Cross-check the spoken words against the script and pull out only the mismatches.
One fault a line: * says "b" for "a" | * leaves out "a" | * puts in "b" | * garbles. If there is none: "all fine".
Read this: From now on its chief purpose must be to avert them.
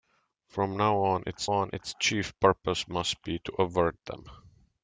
* puts in "on its"